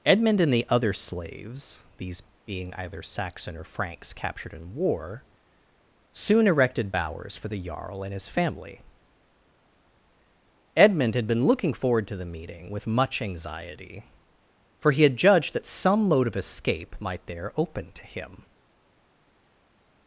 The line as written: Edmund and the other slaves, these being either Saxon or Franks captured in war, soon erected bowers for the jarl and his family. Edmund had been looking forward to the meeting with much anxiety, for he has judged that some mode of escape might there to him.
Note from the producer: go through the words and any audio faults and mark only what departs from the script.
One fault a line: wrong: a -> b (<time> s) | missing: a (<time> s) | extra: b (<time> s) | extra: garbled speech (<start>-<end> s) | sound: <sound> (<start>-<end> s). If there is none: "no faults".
wrong: has -> had (15.0 s)
extra: open (17.6 s)